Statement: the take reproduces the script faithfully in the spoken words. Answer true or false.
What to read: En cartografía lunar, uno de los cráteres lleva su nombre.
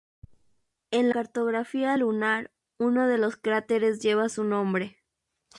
true